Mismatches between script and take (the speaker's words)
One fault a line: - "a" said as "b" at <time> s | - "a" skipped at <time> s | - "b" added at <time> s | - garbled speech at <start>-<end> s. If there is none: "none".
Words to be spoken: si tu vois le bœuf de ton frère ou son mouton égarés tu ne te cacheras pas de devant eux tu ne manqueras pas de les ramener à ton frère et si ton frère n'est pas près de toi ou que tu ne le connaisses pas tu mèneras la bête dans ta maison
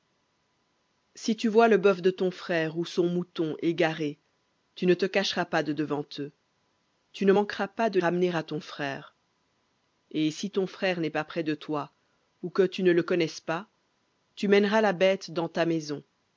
- "les" skipped at 8.0 s